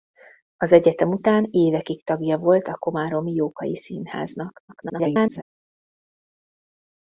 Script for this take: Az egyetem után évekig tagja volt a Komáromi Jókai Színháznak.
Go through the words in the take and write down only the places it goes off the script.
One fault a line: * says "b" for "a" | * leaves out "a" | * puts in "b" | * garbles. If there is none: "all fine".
* garbles